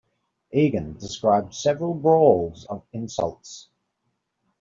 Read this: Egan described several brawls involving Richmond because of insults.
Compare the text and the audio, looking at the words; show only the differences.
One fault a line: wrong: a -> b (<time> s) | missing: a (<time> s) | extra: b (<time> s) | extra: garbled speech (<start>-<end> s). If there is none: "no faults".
missing: involving Richmond because (2.6 s)